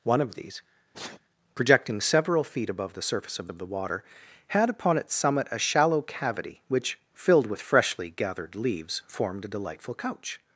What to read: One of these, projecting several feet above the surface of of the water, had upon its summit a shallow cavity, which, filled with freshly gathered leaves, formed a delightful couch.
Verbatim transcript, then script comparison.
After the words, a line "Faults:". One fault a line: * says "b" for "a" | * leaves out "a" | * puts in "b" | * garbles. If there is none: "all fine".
One of these, projecting several feet above the surface of of the water, had upon its summit a shallow cavity, which, filled with freshly gathered leaves, formed a delightful couch.
Faults:
all fine